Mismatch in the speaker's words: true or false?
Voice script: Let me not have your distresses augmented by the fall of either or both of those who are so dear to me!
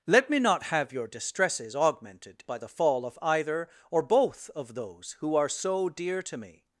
false